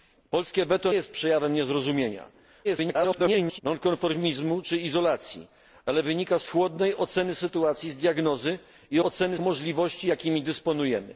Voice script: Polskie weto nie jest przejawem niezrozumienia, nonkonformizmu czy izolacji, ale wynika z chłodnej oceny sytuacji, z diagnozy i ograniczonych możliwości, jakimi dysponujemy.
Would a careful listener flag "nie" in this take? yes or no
yes